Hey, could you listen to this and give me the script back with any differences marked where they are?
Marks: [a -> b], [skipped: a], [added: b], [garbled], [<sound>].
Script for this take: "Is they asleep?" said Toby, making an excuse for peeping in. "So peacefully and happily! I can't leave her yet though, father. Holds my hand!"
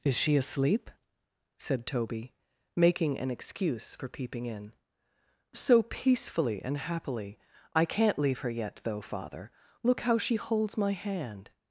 "Is [they -> she] asleep?" said Toby, making an excuse for peeping in. "So peacefully and happily! I can't leave her yet though, father. [added: Look how she] Holds my hand!"